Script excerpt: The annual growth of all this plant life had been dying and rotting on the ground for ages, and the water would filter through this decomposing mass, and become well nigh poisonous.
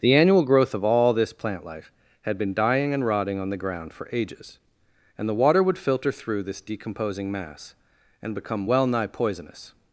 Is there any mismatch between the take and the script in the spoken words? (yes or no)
no